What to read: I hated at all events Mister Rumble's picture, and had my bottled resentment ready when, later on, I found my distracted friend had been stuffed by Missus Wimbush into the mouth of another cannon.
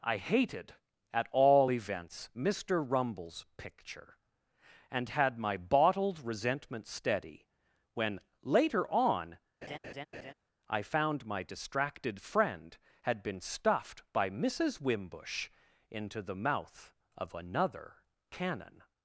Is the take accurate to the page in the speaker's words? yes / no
no